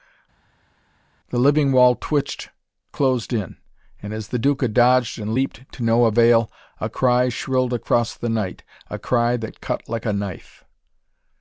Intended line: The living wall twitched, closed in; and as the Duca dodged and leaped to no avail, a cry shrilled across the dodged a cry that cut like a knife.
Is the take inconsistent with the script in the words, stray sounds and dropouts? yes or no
yes